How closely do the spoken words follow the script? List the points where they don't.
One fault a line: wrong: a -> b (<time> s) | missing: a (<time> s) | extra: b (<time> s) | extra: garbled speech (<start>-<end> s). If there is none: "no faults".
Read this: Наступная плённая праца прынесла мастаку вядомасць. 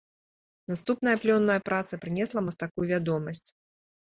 no faults